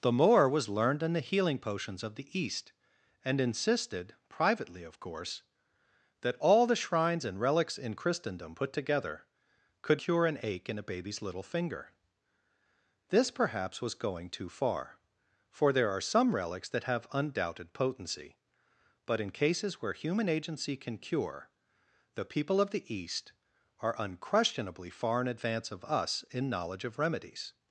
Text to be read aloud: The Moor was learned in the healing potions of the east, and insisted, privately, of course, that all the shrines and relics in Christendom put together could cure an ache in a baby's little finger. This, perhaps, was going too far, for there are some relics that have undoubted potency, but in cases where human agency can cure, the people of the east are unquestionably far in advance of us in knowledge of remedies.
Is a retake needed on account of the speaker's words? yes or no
no